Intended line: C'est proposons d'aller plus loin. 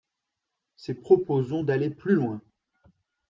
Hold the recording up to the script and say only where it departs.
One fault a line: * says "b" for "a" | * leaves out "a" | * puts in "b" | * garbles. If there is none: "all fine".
all fine